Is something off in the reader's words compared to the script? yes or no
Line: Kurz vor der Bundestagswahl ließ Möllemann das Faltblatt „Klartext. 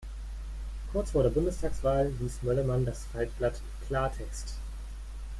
no